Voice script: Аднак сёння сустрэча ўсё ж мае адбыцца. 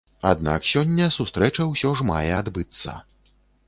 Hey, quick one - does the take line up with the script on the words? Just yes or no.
yes